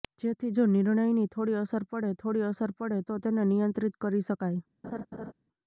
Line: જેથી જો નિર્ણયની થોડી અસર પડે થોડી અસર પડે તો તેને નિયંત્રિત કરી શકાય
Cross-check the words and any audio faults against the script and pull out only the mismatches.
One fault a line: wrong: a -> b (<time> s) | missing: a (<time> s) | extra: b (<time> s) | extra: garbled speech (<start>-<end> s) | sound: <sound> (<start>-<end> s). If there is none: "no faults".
sound: laugh (4.8-5.3 s)